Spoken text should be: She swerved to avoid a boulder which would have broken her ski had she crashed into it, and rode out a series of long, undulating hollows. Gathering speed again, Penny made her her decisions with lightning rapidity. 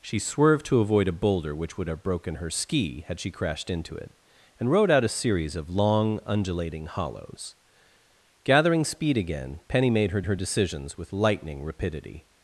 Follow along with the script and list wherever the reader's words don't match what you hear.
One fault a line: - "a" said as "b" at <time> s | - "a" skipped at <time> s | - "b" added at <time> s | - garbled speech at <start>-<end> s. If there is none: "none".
none